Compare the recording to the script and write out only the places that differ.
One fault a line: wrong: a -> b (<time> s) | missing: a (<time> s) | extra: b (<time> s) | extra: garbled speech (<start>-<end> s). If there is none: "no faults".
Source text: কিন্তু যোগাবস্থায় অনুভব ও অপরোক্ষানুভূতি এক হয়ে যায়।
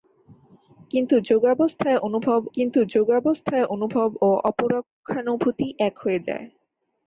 extra: কিন্তু যোগাবস্থায় অনুভব (2.5 s)